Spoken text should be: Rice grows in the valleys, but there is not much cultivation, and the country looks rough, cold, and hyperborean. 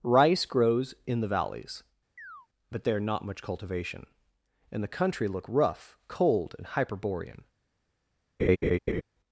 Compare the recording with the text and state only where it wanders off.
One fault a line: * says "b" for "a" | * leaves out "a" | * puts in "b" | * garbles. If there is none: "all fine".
* leaves out "is"
* says "look" for "looks"